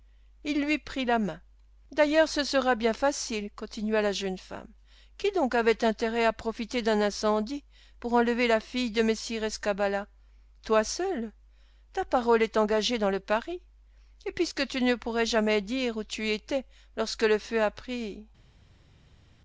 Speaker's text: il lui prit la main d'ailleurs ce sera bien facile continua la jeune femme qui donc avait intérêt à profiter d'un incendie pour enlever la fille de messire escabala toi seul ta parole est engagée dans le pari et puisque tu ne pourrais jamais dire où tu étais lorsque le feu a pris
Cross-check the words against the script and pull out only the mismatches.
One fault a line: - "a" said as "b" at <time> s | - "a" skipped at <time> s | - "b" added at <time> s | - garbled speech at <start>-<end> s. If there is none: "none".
none